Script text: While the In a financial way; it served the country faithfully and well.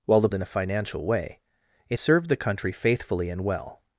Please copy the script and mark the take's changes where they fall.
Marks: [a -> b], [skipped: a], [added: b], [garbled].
While the In a financial way; it served the country faithfully and well.